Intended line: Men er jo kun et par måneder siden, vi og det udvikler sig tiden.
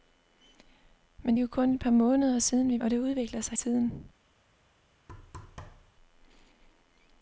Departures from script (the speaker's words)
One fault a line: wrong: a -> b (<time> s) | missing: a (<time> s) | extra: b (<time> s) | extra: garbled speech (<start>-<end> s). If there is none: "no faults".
no faults